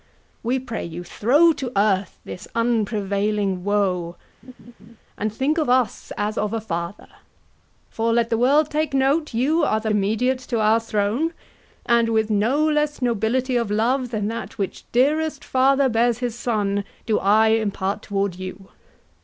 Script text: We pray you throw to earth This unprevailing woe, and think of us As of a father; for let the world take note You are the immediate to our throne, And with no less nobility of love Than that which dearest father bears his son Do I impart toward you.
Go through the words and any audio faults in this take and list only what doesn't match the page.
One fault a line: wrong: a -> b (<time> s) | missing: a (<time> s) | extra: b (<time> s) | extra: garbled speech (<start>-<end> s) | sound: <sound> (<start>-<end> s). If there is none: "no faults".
sound: laugh (4.4-5.0 s)